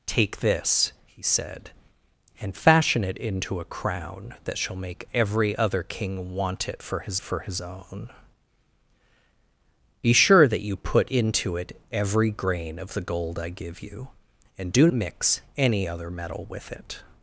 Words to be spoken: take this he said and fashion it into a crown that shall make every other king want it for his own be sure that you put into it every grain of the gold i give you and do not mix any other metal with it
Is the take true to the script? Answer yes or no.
no